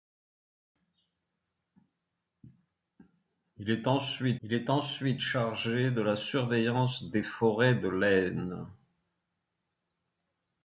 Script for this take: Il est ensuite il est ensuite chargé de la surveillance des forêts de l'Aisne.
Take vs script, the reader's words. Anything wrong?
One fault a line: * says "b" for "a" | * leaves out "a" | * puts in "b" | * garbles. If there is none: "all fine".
all fine